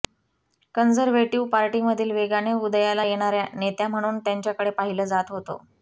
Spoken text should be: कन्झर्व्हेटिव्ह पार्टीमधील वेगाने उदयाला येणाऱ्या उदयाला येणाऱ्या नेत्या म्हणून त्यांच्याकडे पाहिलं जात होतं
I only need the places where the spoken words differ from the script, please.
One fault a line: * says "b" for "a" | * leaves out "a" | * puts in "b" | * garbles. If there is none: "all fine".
* leaves out "उदयाला येणाऱ्या"